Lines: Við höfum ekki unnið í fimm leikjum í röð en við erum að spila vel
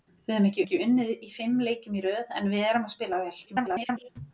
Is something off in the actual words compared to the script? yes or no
yes